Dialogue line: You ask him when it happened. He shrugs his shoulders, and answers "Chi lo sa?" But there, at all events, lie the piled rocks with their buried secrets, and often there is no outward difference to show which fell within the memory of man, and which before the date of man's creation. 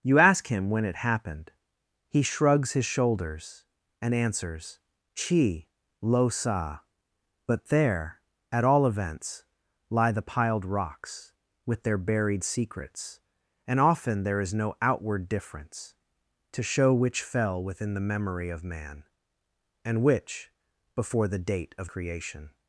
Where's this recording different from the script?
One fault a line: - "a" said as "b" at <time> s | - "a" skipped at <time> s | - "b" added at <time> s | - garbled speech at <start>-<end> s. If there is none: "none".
- "man's" skipped at 21.9 s